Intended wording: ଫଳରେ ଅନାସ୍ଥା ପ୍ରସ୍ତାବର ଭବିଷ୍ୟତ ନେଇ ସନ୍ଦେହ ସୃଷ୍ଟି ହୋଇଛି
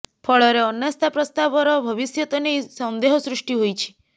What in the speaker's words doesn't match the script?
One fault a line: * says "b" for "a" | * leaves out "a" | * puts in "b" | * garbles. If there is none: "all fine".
all fine